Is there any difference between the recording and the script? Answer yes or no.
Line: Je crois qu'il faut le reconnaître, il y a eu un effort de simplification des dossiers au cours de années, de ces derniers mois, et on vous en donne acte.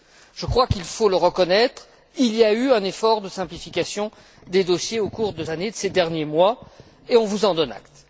no